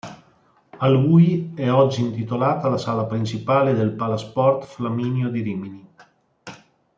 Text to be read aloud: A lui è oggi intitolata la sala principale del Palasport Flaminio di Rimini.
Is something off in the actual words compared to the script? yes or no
no